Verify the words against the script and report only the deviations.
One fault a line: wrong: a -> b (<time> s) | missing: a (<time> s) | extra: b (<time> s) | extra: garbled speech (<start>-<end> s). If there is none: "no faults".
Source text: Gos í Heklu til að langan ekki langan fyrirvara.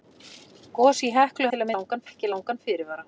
no faults